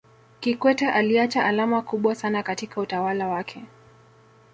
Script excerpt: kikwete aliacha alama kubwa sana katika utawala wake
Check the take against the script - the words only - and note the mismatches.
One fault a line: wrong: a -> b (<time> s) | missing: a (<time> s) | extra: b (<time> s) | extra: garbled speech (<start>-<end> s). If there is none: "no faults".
no faults